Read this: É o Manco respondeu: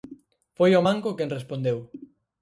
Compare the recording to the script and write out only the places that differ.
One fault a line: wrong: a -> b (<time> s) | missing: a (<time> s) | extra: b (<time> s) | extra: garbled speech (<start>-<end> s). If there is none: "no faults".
wrong: É -> Foi (0.6 s)
extra: quen (1.2 s)